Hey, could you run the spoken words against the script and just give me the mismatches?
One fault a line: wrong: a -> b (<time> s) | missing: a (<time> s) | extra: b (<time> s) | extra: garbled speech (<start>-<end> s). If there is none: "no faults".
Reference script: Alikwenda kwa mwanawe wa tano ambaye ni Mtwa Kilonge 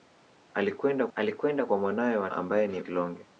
extra: alikwenda (1.1 s)
missing: tano (2.3 s)
missing: Mtwa (2.8 s)